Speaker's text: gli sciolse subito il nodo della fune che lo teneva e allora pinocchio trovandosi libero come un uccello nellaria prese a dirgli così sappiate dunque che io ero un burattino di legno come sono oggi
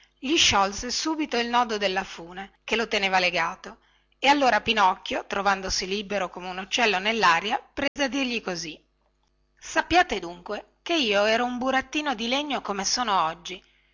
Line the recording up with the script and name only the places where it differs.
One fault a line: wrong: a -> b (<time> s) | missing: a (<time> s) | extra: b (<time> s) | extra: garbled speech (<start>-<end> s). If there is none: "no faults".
extra: legato (3.2 s)